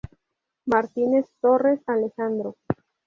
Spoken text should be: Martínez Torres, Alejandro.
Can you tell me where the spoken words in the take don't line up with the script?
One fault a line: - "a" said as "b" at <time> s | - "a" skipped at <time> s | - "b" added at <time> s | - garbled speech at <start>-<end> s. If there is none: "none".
none